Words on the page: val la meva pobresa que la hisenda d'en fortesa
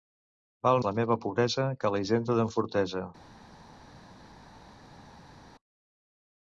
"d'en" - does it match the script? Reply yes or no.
yes